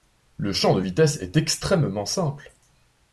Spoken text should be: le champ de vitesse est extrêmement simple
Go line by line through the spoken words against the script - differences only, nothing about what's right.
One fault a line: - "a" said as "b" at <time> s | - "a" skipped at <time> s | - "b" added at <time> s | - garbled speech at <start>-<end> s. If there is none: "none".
none